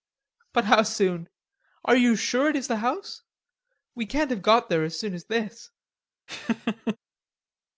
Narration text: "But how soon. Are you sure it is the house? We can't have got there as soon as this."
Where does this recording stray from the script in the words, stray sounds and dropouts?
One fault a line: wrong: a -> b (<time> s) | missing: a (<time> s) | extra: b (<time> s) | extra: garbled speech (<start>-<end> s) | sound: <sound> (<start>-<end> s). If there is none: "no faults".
sound: laugh (6.3-7.0 s)